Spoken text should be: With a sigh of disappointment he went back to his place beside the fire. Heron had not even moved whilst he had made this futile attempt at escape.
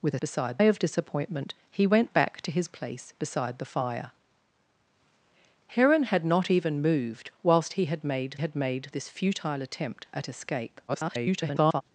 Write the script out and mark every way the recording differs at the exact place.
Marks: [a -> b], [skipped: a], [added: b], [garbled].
With a [sigh -> beside] of disappointment he went back to his place beside the fire. Heron had not even moved whilst he had made [added: had made] this futile attempt at escape. [garbled]